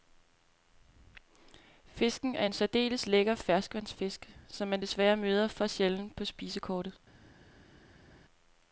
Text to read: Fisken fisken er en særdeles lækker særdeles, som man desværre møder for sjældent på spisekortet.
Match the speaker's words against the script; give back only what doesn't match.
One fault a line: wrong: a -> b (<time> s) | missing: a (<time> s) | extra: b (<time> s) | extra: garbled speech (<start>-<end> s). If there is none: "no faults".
missing: fisken (2.4 s)
wrong: særdeles -> ferskvandsfisk (3.3 s)